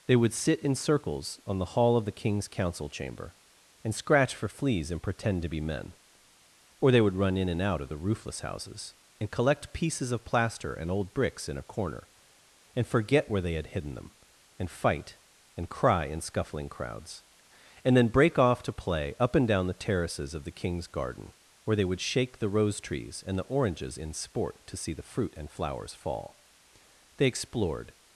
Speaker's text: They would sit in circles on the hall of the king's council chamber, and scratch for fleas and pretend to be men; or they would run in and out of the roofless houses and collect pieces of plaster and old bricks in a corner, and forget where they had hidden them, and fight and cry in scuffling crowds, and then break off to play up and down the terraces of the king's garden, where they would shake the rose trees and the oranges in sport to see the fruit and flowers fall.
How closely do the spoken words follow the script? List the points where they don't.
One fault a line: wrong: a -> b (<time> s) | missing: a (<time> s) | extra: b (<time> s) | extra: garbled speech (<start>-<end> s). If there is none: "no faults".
extra: They explored (27.2 s)